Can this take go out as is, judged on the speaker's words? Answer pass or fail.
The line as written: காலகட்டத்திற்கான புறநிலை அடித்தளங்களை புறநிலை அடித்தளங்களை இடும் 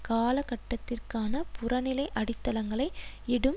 fail